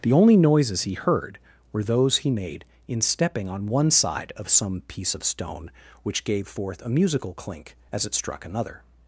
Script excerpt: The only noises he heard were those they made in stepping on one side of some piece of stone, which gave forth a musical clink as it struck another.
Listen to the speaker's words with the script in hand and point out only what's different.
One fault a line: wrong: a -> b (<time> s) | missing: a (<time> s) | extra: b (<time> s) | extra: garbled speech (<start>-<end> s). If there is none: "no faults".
wrong: they -> he (2.2 s)